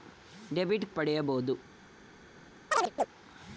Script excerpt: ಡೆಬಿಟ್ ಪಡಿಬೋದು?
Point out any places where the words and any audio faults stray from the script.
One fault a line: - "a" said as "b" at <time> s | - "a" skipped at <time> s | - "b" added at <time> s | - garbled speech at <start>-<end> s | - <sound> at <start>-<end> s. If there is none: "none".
- chirp at 2.7-3.1 s